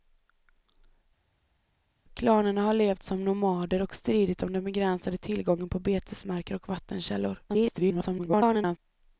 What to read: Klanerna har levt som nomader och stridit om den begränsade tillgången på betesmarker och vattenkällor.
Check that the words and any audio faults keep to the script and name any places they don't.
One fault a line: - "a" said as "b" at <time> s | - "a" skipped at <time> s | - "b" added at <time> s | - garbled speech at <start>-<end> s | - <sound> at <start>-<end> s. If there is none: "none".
- garbled speech at 7.5-8.8 s